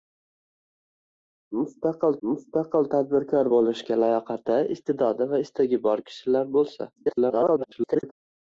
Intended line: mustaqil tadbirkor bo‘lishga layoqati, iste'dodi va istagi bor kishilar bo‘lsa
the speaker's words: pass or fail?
fail